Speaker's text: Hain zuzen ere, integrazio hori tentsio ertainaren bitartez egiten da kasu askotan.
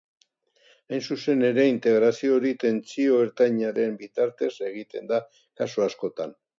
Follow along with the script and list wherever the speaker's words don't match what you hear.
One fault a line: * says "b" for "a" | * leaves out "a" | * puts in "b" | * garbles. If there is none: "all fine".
all fine